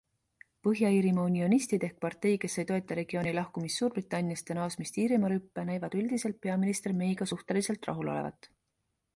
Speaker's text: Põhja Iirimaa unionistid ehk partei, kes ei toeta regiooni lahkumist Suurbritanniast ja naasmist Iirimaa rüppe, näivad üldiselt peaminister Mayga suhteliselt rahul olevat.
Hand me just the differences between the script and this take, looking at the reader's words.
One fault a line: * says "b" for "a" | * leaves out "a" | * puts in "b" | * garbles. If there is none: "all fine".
all fine